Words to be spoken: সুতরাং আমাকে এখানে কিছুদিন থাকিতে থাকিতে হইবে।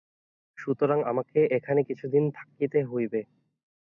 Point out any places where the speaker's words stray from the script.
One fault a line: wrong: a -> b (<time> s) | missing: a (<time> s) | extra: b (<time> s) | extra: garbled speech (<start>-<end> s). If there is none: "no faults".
missing: থাকিতে (2.8 s)